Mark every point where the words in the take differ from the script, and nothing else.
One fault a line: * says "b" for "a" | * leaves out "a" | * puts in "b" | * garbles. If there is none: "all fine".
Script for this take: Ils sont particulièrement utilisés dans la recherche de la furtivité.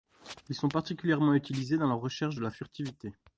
all fine